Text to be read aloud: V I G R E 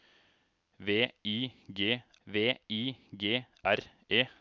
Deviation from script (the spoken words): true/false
true